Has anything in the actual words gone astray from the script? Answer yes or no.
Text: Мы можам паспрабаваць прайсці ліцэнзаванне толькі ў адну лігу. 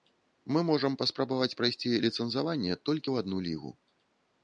no